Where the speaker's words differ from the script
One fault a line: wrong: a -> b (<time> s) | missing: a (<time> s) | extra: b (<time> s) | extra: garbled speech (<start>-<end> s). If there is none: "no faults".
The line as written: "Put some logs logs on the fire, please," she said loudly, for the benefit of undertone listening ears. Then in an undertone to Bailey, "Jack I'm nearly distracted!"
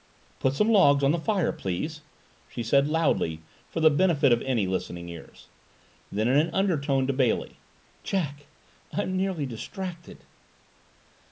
missing: logs (1.0 s)
wrong: undertone -> any (4.4 s)